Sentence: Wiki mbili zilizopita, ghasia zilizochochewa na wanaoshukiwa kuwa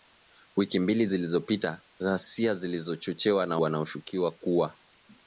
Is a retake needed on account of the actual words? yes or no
no